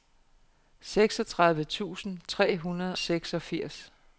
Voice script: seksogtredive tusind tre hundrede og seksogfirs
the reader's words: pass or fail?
fail